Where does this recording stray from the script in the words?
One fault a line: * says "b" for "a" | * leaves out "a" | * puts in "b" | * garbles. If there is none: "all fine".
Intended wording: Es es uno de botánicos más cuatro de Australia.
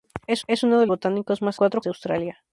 all fine